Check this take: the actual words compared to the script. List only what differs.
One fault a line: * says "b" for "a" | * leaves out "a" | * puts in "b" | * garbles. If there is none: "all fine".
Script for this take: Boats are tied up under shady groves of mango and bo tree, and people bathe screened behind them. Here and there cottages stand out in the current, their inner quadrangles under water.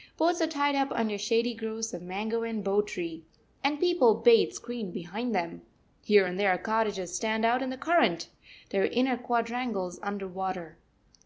all fine